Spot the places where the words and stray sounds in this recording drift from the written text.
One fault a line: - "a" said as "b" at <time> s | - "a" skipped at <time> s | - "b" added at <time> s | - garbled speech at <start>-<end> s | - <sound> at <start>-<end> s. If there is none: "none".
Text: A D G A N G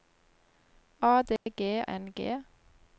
- dropout at 1.4-1.5 s
- "A" skipped at 1.8 s